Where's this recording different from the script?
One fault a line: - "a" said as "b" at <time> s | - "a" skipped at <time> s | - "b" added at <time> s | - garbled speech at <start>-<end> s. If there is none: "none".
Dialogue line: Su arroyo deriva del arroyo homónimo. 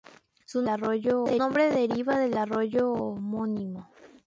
none